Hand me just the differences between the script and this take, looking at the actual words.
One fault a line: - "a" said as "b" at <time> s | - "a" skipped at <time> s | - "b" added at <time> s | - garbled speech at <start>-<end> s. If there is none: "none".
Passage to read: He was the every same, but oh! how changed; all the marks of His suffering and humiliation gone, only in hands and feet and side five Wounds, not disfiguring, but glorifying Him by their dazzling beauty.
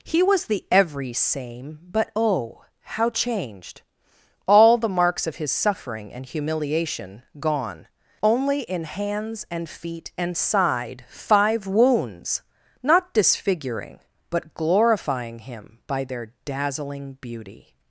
none